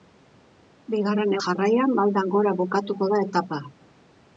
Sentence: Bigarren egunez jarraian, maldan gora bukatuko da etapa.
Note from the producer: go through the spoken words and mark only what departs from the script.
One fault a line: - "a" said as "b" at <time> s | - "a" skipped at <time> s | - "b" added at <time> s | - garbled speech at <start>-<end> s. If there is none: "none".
- "egunez" skipped at 1.4 s